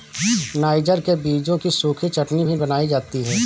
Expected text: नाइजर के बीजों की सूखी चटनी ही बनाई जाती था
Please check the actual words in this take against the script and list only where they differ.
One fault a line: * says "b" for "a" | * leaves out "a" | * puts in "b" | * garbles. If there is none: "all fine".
* says "भी" for "ही"
* says "है" for "था"